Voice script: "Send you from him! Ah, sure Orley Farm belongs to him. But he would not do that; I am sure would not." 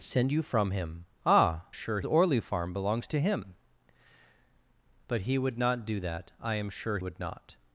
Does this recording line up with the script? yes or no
yes